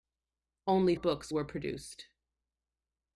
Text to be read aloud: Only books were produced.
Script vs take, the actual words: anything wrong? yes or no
no